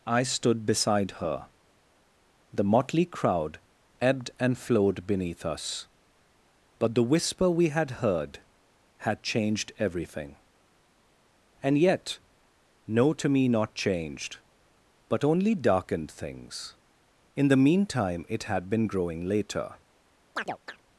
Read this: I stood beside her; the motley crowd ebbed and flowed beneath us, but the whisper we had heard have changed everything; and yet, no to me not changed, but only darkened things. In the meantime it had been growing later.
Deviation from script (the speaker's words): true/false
true